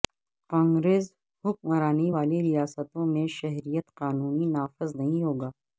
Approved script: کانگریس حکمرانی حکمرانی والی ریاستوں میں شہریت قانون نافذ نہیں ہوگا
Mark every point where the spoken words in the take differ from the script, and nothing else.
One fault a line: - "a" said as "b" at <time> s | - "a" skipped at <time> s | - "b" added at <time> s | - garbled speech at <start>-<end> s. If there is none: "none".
- "حکمرانی" skipped at 2.1 s